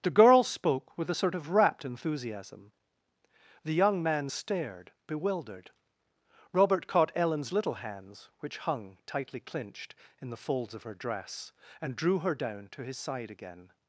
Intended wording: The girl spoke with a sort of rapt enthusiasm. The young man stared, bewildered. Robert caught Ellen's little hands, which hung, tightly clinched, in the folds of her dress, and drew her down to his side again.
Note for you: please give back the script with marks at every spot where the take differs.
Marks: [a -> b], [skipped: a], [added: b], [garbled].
The girl spoke with a sort of rapt enthusiasm. The young man stared, bewildered. Robert caught Ellen's little hands, which hung, tightly clinched, in the folds of her dress, and drew her down to his side again.